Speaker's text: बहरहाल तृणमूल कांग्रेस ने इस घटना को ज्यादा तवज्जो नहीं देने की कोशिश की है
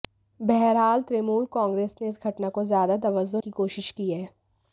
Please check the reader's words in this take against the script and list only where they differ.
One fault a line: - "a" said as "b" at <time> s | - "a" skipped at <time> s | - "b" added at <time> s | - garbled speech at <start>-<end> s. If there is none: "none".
- "नहीं देने" skipped at 3.4 s